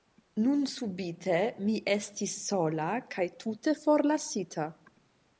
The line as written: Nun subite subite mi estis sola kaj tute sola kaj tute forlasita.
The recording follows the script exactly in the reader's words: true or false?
false